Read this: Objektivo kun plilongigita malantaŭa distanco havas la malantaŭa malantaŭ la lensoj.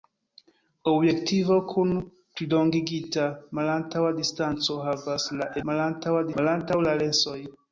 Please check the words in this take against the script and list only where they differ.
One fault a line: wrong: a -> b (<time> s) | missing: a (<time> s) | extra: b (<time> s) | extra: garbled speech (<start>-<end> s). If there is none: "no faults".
no faults